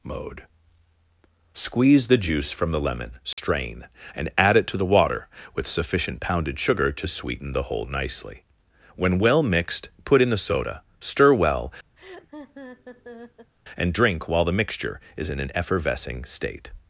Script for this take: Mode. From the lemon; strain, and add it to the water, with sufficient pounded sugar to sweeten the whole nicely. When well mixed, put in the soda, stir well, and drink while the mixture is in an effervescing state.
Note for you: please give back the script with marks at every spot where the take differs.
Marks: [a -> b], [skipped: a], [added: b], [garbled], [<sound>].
Mode. [added: Squeeze the juice] From the lemon; strain, [dropout] and add it to the water, with sufficient pounded sugar to sweeten the whole nicely. When well mixed, put in the soda, stir well, [laugh] and drink while the mixture is in an effervescing state.